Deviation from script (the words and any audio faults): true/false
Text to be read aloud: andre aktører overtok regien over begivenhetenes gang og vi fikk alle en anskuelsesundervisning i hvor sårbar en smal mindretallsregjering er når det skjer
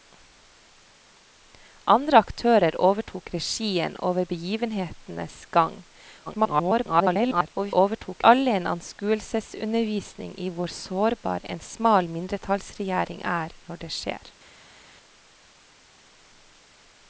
true